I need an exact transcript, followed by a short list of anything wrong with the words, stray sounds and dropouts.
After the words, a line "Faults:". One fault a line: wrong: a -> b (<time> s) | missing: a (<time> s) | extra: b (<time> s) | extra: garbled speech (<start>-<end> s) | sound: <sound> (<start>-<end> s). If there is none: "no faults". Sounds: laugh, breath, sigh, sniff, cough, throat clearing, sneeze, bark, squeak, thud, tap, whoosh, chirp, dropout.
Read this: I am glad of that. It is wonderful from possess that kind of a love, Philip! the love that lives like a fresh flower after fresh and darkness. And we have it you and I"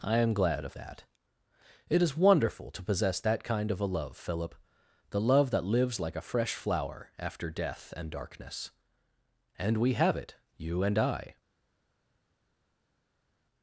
I am glad of that. It is wonderful to possess that kind of a love, Philip! the love that lives like a fresh flower after death and darkness. And we have it you and I"
Faults:
wrong: from -> to (2.7 s)
wrong: fresh -> death (7.5 s)